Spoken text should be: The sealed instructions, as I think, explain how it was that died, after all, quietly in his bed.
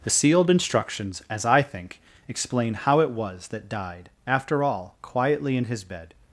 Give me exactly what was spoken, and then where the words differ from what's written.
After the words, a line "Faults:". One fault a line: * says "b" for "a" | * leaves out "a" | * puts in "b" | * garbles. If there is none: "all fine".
The sealed instructions, as I think, explain how it was that died, after all, quietly in his bed.
Faults:
all fine